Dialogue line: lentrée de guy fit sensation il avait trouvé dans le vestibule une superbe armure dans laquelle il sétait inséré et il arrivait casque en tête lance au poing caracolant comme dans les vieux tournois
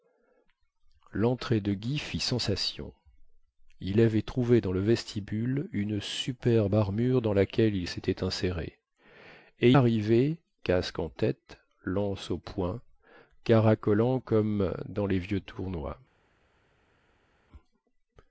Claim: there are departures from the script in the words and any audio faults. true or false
true